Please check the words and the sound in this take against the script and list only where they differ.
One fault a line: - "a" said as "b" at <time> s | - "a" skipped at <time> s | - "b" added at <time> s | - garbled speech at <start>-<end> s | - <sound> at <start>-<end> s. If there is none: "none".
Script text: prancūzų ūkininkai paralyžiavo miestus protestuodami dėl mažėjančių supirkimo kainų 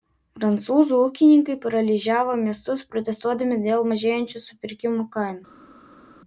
none